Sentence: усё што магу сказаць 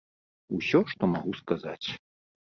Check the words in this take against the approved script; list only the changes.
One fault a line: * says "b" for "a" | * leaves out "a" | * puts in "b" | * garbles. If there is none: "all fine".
all fine